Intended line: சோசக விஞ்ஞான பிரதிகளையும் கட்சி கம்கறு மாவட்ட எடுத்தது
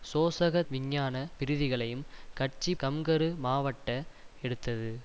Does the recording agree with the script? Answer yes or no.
yes